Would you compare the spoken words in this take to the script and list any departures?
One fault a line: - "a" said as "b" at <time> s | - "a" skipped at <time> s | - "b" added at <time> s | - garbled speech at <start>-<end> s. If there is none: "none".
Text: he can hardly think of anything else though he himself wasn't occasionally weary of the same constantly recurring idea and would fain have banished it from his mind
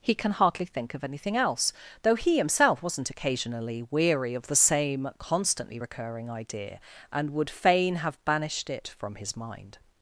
none